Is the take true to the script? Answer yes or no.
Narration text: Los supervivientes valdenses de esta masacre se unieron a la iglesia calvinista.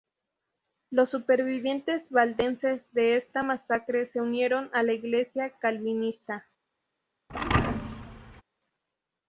yes